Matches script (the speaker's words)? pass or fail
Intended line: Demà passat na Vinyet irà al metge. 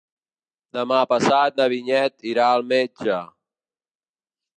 pass